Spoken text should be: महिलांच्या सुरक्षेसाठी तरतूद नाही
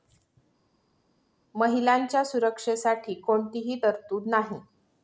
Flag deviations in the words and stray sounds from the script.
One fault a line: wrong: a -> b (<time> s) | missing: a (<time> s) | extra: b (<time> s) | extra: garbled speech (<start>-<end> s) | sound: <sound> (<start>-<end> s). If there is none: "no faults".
extra: कोणतीही (3.2 s)